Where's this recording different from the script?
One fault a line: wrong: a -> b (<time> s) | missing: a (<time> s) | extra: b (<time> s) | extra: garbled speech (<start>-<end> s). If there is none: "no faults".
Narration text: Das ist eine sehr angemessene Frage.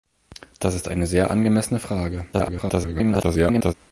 extra: garbled speech (2.3-3.7 s)